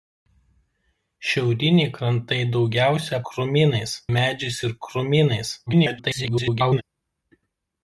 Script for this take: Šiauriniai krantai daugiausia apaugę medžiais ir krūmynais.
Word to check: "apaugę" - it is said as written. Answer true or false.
false